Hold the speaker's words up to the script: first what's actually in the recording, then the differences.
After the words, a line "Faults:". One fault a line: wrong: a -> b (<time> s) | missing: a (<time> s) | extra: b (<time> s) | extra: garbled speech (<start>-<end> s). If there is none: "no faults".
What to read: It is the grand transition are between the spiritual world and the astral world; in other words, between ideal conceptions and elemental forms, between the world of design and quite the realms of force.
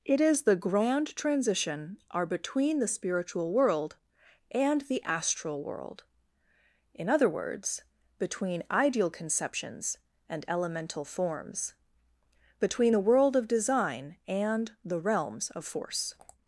It is the grand transition are between the spiritual world and the astral world; in other words, between ideal conceptions and elemental forms, between the world of design and the realms of force.
Faults:
missing: quite (14.7 s)